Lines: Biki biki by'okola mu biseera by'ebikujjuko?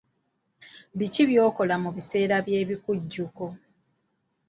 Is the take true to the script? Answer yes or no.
no